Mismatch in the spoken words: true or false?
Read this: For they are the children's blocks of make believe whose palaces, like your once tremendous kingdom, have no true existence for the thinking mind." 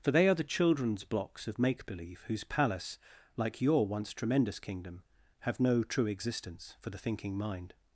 true